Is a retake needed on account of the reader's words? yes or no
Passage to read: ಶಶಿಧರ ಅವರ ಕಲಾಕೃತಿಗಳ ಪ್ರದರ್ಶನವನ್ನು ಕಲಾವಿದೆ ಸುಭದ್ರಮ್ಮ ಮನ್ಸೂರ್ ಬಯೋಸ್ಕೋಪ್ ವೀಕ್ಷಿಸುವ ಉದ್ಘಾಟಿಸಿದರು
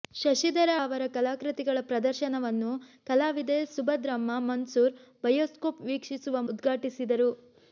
no